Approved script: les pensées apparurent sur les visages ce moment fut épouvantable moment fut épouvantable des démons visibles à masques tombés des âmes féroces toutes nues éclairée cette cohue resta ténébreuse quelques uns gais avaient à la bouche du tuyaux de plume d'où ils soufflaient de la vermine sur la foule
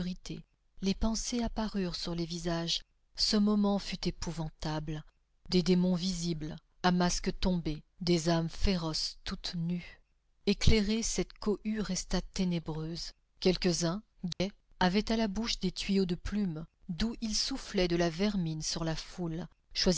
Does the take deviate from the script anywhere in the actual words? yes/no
yes